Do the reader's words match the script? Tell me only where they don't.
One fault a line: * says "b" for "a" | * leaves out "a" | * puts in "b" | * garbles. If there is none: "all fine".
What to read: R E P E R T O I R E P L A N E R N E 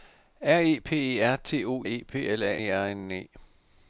* leaves out "I R"
* leaves out "N"